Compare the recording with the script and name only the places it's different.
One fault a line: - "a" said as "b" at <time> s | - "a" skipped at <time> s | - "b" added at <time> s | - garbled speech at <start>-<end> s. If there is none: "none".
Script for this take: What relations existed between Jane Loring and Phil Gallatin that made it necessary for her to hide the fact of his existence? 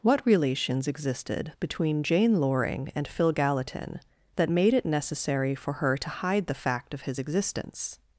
none